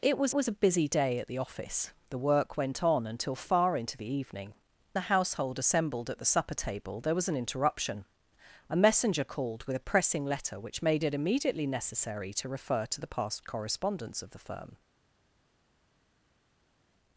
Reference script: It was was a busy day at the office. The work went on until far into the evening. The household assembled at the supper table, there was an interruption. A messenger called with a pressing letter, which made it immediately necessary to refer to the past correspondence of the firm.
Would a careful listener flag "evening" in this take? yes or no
no